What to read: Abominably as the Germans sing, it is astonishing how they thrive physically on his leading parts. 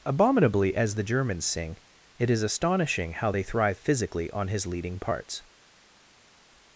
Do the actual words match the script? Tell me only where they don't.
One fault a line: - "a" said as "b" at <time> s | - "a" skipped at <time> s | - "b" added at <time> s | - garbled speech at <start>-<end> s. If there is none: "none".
none